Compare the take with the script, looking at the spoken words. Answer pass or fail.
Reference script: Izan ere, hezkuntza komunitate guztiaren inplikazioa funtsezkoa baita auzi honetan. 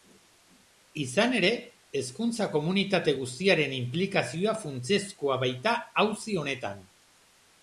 pass